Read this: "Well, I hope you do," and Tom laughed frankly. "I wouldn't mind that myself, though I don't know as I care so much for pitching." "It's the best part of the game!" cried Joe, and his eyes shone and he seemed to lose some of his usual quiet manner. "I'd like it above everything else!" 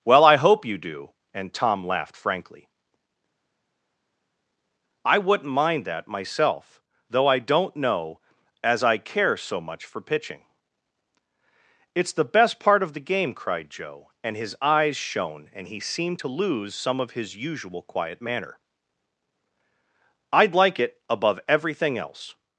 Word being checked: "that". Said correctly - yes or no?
yes